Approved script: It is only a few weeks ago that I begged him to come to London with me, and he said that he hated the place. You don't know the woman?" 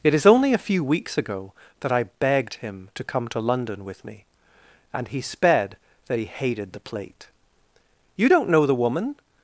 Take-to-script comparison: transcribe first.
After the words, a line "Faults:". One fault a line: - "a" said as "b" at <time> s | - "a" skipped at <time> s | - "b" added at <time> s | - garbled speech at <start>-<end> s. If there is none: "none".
It is only a few weeks ago that I begged him to come to London with me, and he sped that he hated the plate. You don't know the woman?"
Faults:
- "said" said as "sped" at 5.2 s
- "place" said as "plate" at 6.8 s